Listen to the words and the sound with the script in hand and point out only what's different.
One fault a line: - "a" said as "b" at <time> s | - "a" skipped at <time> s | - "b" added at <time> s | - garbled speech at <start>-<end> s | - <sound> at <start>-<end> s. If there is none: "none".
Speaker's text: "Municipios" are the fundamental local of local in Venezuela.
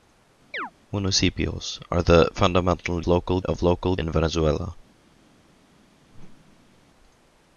- chirp at 0.5-0.7 s
- whoosh at 6.1-6.8 s